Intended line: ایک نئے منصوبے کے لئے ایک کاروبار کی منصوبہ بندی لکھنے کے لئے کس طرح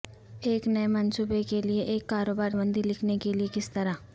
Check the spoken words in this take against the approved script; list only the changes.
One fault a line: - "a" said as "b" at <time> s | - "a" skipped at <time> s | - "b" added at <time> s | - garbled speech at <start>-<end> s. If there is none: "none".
- "کی منصوبہ" skipped at 2.5 s